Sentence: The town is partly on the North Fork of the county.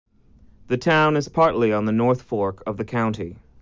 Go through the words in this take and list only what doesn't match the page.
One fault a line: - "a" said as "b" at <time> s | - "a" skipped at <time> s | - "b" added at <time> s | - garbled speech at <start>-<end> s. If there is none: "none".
none